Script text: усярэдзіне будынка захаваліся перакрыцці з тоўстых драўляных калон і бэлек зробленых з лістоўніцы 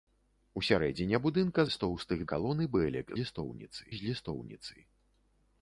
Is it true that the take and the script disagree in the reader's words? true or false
true